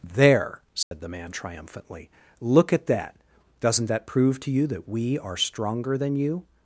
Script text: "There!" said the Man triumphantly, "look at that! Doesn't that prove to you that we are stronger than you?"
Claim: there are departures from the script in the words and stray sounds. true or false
true